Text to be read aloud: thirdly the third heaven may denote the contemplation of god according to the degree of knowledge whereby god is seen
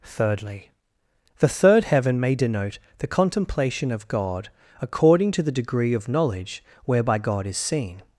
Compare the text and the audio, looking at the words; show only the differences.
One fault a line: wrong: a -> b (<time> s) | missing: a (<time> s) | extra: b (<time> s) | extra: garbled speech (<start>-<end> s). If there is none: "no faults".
no faults